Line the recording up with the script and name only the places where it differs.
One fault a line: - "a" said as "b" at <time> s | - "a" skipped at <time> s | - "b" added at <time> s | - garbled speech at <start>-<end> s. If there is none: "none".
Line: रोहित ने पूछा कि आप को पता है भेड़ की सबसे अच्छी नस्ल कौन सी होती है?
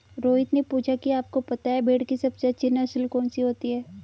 none